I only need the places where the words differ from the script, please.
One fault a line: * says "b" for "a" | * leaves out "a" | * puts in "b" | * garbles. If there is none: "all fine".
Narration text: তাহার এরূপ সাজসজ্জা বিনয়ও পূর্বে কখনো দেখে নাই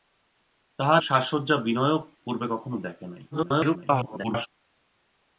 * leaves out "এরূপ"
* garbles